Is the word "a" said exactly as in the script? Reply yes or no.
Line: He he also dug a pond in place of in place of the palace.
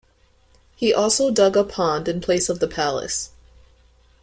yes